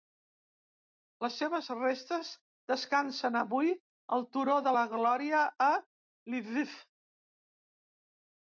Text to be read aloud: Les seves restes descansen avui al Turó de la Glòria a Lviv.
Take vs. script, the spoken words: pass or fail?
pass